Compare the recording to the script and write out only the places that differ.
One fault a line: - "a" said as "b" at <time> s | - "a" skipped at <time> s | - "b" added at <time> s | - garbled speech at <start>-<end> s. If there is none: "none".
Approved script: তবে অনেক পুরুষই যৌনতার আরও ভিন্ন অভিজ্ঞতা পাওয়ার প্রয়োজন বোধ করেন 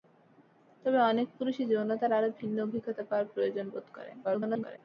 - garbled speech at 4.2-4.8 s